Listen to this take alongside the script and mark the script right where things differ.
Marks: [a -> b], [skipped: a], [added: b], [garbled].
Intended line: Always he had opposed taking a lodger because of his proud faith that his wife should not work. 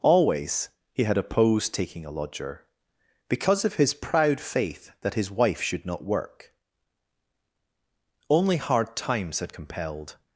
Always he had opposed taking a lodger because of his proud faith that his wife should not work. [added: Only hard times had compelled]